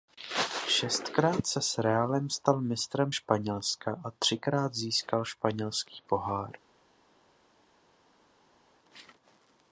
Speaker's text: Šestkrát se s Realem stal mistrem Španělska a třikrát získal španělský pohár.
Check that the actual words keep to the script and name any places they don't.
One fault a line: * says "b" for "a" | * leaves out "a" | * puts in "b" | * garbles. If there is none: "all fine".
all fine